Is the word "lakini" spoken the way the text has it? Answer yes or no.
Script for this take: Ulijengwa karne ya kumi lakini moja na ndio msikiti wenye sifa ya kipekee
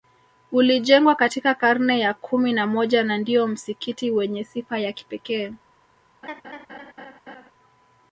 no